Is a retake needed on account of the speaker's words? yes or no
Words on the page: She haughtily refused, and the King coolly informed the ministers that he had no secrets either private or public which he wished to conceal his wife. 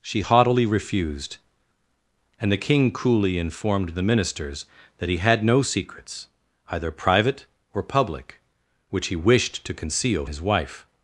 no